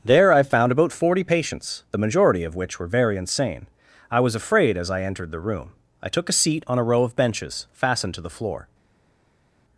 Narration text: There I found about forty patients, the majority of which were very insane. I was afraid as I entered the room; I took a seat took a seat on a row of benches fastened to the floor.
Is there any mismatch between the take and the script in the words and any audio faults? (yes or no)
yes